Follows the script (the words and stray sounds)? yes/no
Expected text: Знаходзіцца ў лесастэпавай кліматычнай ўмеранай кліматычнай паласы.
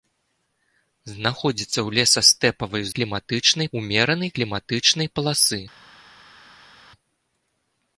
yes